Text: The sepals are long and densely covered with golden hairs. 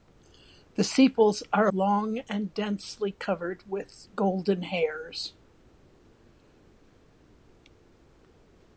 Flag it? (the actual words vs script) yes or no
no